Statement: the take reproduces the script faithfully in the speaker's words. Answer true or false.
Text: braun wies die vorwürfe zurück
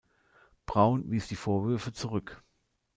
true